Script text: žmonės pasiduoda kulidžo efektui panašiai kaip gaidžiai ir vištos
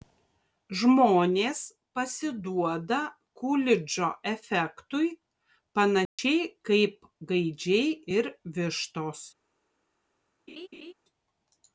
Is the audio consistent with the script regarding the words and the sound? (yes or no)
no